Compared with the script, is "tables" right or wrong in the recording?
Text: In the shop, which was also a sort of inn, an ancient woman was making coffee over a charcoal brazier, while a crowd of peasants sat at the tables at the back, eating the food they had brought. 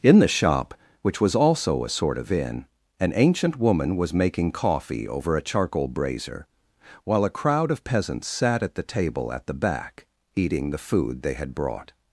wrong